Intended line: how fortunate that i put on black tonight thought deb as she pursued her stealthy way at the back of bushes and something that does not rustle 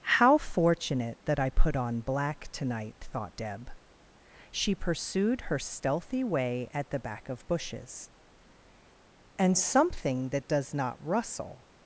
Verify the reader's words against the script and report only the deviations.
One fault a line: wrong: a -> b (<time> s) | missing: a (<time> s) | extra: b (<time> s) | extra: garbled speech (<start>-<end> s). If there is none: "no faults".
missing: as (3.7 s)